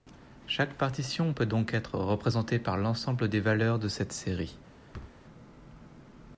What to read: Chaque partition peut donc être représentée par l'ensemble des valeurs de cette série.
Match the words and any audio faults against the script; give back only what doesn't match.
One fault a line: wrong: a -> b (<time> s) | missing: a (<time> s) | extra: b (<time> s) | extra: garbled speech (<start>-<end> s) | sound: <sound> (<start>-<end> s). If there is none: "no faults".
sound: thud (4.9-5.2 s)